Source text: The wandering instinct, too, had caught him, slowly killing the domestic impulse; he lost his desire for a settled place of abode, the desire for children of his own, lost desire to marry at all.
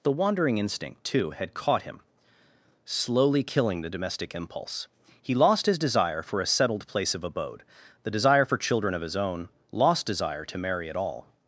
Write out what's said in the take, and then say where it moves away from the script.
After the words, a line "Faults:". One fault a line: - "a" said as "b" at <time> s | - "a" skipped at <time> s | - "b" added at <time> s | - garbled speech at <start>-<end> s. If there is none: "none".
The wandering instinct, too, had caught him, slowly killing the domestic impulse; he lost his desire for a settled place of abode, the desire for children of his own, lost desire to marry at all.
Faults:
none